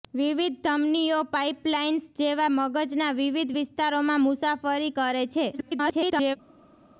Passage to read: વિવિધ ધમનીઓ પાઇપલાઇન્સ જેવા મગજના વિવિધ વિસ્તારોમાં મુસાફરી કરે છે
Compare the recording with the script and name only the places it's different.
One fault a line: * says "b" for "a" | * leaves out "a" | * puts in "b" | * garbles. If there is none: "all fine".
* garbles